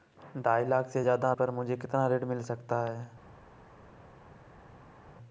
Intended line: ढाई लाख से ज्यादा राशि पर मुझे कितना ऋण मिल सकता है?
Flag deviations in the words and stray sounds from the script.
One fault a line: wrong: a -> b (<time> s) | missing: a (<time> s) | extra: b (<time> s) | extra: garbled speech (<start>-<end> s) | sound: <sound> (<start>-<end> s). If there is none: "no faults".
missing: राशि (1.3 s)